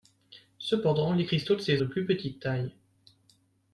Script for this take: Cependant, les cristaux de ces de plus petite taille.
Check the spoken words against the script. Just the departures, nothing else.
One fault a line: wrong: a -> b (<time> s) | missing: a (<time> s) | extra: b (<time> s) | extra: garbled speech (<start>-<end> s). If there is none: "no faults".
no faults